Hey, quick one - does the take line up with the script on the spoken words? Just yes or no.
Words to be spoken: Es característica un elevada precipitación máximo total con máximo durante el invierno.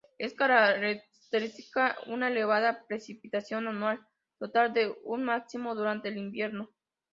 no